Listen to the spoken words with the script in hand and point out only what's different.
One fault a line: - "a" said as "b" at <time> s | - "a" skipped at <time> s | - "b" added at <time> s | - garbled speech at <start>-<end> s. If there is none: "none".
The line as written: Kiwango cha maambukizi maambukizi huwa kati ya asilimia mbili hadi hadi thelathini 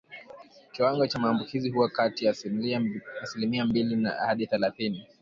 - "maambukizi" skipped at 1.7 s
- "hadi" skipped at 4.5 s